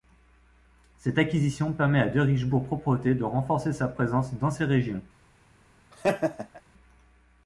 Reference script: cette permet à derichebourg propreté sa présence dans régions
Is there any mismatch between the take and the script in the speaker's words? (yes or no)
yes